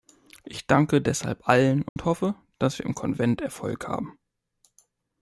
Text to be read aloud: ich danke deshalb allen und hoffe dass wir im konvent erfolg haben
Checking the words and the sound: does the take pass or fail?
fail